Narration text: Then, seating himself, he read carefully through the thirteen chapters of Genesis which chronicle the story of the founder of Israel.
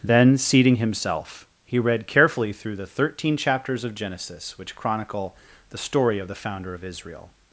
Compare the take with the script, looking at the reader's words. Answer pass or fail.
pass